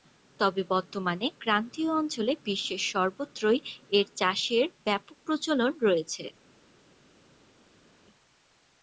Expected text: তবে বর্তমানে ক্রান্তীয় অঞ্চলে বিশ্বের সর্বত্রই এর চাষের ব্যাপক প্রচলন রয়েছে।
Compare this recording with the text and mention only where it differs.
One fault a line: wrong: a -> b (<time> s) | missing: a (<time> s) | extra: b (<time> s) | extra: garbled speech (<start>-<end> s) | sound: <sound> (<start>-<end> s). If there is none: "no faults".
no faults